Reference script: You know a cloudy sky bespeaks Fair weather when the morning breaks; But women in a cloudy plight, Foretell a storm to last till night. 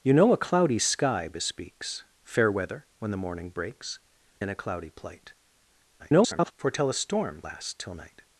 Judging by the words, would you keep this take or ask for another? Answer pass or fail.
fail